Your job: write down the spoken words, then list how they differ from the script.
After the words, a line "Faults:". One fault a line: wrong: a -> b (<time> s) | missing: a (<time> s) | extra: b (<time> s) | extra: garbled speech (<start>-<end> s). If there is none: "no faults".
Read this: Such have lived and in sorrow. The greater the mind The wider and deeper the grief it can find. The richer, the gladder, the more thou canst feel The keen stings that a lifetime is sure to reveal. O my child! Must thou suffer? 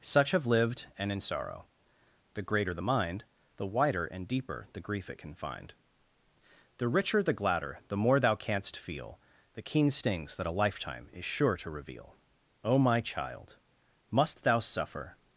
Such have lived and in sorrow. The greater the mind The wider and deeper the grief it can find. The richer, the gladder, the more thou canst feel The keen stings that a lifetime is sure to reveal. O my child! Must thou suffer?
Faults:
no faults